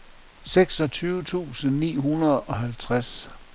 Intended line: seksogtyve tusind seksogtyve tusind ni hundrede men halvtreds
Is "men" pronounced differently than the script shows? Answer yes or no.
yes